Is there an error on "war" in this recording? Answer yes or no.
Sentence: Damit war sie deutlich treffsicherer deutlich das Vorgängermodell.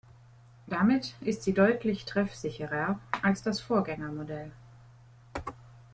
yes